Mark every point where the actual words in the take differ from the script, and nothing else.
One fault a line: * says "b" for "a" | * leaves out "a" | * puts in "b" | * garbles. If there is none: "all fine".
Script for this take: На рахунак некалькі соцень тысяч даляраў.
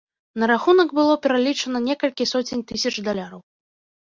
* puts in "было пералічана"